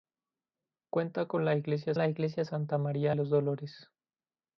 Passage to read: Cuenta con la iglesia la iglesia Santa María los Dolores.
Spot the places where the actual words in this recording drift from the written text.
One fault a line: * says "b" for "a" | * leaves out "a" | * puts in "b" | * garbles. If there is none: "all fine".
all fine